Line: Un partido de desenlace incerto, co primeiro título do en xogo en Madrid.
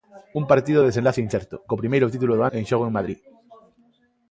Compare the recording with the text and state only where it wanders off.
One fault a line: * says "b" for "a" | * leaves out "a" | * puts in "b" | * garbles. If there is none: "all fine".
all fine